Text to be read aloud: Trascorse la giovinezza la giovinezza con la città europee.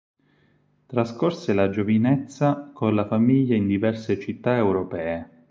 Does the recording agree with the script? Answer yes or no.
no